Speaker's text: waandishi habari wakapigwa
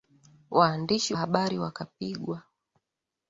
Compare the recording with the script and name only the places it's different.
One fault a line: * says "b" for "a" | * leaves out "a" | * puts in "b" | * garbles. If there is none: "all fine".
all fine